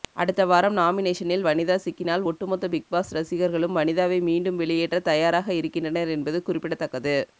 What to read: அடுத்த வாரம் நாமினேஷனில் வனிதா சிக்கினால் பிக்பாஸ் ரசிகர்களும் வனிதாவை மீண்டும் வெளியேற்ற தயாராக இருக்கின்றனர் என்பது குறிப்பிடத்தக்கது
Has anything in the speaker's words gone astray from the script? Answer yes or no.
yes